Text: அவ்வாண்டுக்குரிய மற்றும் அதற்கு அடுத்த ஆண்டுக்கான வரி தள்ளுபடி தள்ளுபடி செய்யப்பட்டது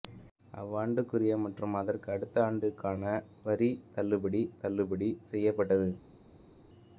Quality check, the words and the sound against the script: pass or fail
pass